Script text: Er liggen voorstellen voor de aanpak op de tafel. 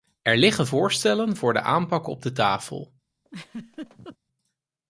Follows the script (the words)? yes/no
yes